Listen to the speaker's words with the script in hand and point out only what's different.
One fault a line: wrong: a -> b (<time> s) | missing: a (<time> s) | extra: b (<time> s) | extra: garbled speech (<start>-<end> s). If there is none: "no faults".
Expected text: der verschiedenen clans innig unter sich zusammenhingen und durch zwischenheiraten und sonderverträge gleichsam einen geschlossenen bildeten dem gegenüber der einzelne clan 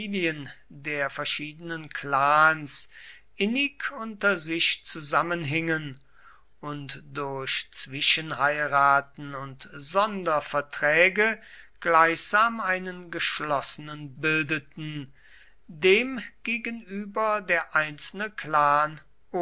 no faults